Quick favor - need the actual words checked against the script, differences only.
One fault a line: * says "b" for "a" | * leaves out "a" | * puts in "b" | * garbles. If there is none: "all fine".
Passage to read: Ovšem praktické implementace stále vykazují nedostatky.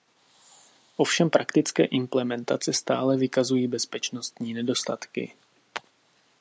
* puts in "bezpečnostní"